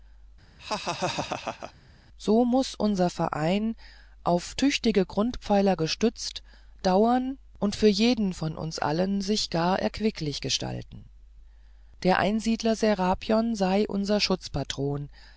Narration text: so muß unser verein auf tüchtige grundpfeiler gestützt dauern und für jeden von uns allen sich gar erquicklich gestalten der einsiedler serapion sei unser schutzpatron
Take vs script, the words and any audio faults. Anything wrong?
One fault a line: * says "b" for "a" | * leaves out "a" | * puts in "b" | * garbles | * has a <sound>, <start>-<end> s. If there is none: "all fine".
* has a laugh, 0.6-1.7 s